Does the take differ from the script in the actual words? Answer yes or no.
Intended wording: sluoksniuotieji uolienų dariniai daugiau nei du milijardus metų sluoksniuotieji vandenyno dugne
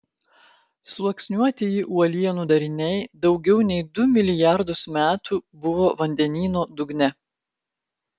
yes